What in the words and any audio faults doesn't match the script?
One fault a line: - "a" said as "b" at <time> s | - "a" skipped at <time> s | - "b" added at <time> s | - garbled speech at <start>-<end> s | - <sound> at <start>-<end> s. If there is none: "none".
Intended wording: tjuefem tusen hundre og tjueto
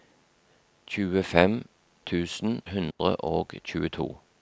- dropout at 2.9-3.0 s